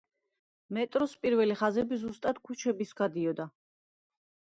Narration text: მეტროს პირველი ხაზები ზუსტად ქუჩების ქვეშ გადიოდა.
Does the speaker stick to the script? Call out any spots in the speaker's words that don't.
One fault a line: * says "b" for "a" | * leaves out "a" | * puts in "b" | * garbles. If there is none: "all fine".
* leaves out "ქვეშ"